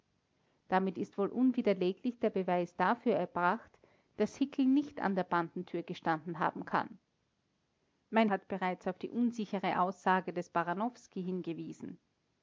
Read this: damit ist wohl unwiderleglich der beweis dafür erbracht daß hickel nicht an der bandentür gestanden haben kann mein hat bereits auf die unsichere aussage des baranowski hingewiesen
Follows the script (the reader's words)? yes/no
yes